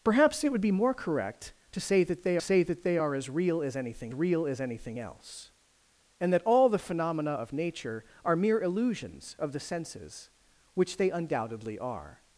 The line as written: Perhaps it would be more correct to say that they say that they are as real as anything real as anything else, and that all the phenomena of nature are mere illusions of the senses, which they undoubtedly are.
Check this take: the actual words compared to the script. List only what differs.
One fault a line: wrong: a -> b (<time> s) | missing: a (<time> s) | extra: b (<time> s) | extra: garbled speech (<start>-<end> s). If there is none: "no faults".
no faults